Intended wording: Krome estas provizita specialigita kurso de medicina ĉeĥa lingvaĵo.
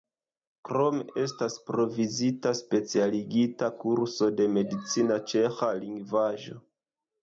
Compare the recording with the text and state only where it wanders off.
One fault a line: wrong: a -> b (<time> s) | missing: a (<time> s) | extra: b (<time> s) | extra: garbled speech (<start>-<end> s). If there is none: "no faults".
no faults